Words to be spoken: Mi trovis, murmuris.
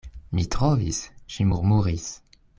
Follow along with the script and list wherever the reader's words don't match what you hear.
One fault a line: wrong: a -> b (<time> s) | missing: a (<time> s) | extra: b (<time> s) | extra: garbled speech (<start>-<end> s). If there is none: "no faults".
extra: ŝi (1.4 s)